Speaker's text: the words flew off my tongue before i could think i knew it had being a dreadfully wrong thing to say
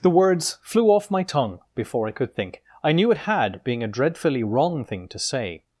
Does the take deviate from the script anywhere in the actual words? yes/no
no